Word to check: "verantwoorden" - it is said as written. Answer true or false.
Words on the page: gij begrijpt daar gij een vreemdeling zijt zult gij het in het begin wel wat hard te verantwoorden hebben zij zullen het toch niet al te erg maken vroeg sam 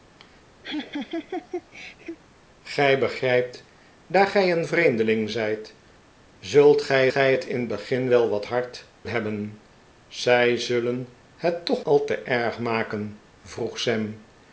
false